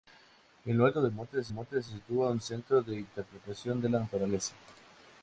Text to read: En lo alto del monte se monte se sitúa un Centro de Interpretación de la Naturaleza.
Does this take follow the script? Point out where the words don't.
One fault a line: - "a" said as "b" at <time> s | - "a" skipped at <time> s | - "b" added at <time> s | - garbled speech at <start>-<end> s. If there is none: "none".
none